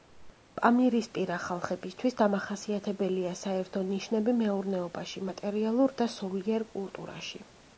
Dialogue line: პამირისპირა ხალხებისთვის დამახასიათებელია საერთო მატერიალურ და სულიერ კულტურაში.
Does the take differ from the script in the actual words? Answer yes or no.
yes